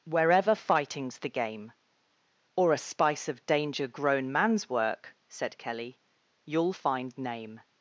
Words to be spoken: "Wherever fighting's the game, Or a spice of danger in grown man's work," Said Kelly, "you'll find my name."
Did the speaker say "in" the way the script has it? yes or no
no